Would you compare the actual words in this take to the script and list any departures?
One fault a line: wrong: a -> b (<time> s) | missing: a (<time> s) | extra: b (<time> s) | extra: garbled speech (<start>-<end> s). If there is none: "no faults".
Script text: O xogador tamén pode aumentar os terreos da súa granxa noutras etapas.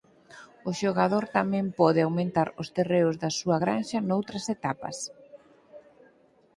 no faults